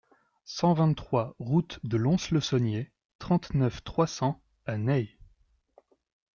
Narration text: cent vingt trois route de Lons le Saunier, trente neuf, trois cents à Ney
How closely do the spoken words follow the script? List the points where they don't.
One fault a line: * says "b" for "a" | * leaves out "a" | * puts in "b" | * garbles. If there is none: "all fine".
all fine